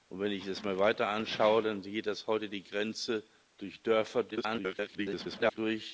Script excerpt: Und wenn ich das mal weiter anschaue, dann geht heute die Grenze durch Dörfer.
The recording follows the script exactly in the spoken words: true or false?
false